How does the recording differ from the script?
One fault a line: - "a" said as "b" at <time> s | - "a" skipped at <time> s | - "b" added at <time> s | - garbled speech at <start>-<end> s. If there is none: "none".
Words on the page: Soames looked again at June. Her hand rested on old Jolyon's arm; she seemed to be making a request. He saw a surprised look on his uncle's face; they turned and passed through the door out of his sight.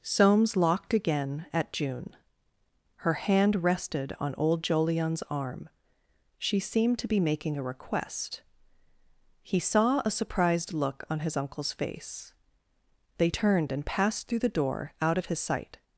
- "looked" said as "locked" at 0.6 s